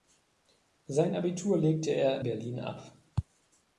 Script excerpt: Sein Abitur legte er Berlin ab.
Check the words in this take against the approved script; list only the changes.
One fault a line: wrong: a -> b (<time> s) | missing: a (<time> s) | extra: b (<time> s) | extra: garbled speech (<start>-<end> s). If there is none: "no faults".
no faults